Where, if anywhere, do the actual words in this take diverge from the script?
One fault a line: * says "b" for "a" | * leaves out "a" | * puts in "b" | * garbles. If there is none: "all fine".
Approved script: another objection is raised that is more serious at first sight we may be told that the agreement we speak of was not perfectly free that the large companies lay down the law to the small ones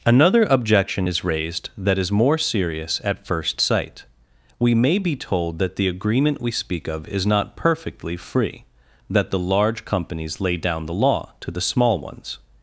* says "is" for "was"